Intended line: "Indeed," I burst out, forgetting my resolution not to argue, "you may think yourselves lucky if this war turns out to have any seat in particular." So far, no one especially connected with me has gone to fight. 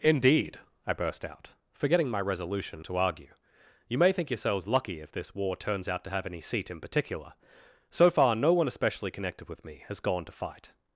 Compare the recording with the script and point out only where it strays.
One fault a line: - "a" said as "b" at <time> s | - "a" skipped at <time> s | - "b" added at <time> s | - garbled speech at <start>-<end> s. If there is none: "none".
- "not" skipped at 2.8 s